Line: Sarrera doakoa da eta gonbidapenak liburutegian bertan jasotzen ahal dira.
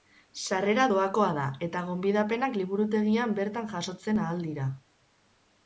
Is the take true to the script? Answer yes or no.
yes